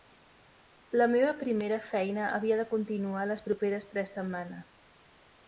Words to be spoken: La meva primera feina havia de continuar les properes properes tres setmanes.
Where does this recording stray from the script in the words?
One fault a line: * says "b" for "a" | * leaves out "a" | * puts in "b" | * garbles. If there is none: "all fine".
* leaves out "properes"